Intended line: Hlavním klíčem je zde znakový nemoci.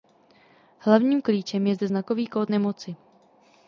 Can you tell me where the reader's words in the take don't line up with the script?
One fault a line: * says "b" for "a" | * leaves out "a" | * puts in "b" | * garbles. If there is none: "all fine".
* puts in "kód"